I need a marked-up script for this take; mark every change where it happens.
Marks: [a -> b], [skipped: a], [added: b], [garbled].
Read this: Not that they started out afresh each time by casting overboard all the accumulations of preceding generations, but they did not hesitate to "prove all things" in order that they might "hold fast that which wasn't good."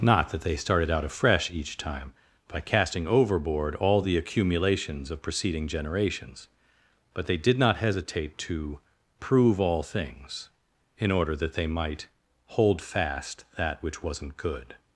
Not that they started out afresh each time by casting overboard all the accumulations of preceding generations, but they did not hesitate to "prove all things" in order that they might "hold fast that which wasn't good."